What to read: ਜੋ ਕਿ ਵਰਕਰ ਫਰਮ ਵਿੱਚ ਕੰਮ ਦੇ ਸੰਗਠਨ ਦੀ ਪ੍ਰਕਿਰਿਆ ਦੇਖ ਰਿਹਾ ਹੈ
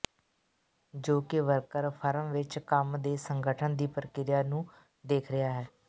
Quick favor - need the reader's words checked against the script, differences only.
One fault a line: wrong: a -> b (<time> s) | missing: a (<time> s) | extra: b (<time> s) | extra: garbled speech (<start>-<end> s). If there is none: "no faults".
extra: ਨੂੰ (4.4 s)